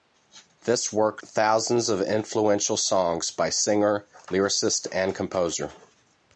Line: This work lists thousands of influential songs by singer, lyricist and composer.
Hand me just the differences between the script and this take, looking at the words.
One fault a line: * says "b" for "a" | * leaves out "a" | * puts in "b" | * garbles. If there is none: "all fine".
* leaves out "lists"